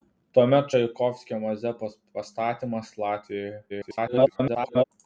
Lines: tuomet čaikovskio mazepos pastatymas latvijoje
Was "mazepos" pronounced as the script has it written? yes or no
yes